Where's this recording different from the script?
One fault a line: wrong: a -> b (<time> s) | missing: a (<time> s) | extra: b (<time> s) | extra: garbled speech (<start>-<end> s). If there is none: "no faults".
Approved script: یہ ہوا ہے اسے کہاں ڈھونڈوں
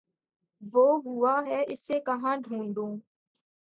wrong: یہ -> وہ (0.7 s)